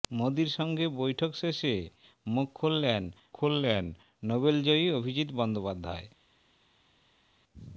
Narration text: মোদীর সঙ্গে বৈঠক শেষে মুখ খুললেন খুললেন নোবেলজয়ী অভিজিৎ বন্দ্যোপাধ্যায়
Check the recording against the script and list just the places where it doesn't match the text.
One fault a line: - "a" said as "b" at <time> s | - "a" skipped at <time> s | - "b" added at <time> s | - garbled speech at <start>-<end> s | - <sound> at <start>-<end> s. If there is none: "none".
none